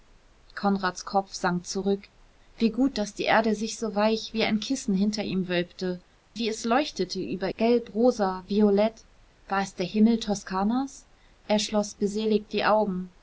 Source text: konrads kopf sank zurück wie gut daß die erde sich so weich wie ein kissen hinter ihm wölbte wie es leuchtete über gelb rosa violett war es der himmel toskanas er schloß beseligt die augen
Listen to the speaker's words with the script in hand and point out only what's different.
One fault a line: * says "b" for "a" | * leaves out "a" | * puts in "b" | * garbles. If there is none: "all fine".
all fine